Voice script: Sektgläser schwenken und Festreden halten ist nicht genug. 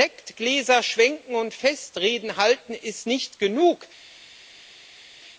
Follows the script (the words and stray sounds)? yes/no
yes